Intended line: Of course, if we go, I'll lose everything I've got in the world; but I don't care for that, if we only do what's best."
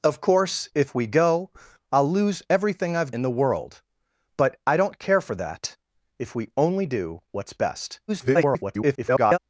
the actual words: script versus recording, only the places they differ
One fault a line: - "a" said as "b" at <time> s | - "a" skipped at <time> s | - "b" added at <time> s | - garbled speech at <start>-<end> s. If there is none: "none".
- "got" skipped at 3.1 s
- garbled speech at 8.1-9.4 s